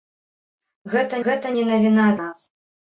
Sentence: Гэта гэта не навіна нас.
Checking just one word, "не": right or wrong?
right